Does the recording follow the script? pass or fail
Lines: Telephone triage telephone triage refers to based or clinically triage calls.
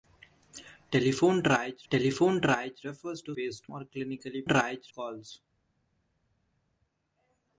pass